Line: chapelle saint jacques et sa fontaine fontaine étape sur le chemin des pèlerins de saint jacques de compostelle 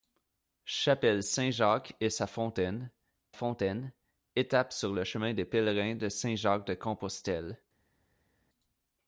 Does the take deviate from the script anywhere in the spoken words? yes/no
no